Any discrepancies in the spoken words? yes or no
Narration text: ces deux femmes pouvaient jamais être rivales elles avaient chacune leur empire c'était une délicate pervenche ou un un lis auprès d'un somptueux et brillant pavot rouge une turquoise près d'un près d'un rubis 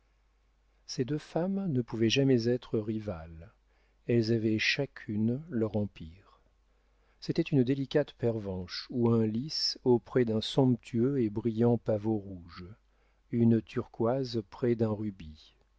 yes